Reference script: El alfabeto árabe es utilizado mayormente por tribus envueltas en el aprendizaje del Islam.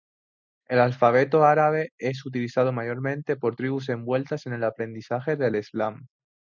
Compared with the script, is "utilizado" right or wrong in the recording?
right